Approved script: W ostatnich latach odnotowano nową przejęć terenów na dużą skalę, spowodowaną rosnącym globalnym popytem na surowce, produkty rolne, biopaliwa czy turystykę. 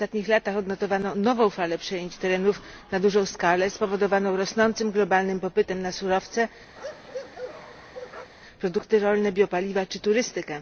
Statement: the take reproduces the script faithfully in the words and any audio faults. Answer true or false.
false